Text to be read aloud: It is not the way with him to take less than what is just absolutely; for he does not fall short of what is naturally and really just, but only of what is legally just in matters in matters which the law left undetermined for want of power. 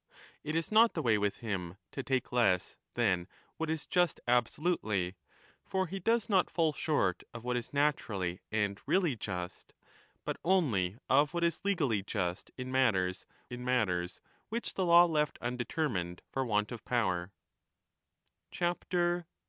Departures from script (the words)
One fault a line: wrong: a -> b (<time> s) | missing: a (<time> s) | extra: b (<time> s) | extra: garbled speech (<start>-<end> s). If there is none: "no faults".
no faults